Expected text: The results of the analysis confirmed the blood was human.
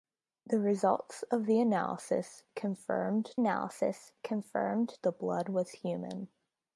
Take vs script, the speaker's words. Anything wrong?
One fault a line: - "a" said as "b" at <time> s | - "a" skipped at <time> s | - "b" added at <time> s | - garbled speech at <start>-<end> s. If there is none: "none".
- "analysis confirmed" added at 3.4 s